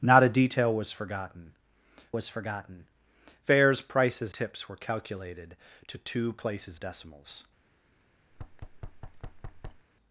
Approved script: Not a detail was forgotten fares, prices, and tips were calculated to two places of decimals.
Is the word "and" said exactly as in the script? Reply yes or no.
no